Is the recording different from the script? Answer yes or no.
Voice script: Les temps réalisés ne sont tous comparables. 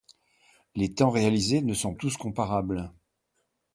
no